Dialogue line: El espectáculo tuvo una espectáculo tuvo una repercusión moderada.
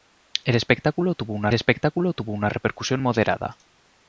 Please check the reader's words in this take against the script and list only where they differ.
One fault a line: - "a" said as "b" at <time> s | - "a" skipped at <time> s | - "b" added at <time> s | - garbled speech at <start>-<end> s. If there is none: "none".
none